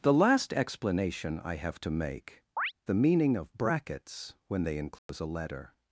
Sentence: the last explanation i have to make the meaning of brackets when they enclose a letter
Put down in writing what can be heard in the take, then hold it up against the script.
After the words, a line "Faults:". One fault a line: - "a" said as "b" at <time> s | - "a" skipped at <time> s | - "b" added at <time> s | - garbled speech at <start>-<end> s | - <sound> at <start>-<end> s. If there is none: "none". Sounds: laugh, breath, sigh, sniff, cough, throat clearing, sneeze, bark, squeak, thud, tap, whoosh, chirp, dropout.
the last explanation i have to make the meaning of brackets when they enclose a letter
Faults:
- chirp at 2.6-2.7 s
- dropout at 5.0-5.1 s